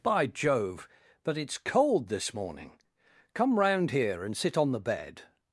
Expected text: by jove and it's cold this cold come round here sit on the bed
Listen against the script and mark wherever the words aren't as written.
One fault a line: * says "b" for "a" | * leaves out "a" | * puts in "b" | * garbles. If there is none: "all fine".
* says "but" for "and"
* says "morning" for "cold"
* puts in "and"